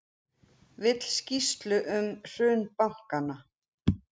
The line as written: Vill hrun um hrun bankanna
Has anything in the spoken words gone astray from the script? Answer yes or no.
yes